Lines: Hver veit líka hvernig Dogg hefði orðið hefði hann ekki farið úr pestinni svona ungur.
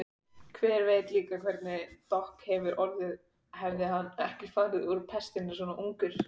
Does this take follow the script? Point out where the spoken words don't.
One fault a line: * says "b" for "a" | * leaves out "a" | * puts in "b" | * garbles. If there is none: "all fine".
all fine